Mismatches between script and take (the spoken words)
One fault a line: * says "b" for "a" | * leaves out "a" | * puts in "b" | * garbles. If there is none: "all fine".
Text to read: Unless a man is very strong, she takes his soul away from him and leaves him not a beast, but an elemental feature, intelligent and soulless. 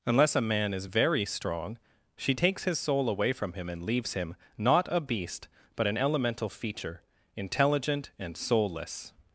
all fine